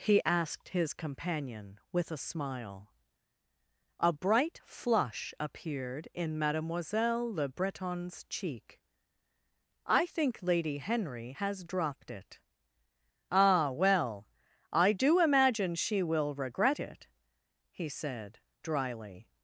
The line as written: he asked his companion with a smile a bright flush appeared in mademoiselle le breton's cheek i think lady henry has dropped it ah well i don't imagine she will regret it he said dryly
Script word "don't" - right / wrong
wrong